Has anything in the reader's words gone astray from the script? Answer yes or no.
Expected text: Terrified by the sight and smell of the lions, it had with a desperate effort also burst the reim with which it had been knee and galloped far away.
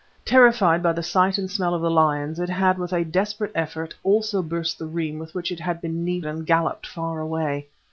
no